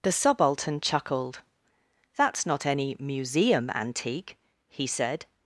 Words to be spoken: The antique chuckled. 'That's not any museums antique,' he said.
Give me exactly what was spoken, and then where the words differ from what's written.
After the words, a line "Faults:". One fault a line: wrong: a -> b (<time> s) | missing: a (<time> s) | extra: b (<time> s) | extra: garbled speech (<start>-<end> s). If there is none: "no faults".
The subaltern chuckled. 'That's not any museum antique,' he said.
Faults:
wrong: antique -> subaltern (0.1 s)
wrong: museums -> museum (3.0 s)